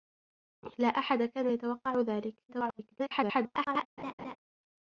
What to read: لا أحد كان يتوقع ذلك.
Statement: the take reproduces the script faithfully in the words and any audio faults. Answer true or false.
false